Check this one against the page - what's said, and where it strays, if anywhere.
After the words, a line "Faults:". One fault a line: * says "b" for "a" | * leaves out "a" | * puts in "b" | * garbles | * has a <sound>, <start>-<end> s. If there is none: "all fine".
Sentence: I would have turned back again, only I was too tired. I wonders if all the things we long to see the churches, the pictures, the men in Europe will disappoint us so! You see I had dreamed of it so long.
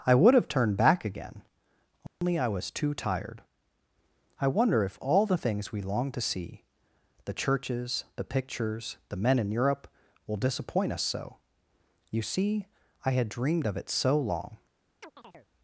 I would have turned back again, only I was too tired. I wonder if all the things we long to see the churches, the pictures, the men in Europe will disappoint us so! You see I had dreamed of it so long.
Faults:
* has a dropout, 2.1-2.2 s
* says "wonder" for "wonders"
* has a chirp, 15.0-15.5 s